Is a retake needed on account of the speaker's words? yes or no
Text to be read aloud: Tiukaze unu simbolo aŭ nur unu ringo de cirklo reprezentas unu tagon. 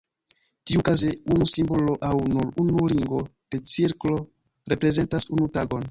no